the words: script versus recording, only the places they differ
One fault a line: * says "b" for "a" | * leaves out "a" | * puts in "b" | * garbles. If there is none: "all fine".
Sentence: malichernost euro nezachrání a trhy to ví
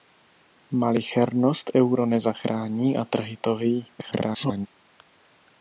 * garbles